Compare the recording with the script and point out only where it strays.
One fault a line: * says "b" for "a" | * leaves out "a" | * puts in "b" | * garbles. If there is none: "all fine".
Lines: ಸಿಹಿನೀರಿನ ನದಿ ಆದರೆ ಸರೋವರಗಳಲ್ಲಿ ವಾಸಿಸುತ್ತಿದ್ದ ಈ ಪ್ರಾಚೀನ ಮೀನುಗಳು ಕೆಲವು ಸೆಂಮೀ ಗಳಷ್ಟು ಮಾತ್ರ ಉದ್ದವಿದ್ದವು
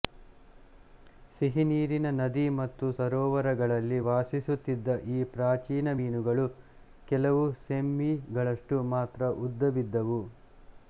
* says "ಮತ್ತು" for "ಆದರೆ"